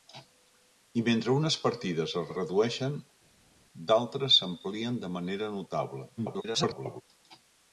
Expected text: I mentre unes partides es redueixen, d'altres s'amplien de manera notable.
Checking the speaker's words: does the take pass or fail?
fail